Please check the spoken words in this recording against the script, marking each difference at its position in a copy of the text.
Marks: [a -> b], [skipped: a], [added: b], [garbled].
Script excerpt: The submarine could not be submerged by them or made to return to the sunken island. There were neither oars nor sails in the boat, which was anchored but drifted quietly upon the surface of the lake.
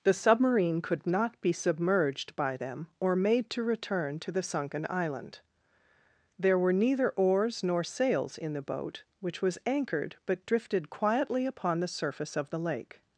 The submarine could not be submerged by them or made to return to the sunken island. There were neither oars nor sails in the boat, which was anchored but drifted quietly upon the surface of the lake.